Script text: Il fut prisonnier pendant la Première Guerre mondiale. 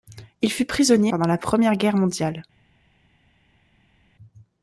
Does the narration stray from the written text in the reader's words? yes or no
no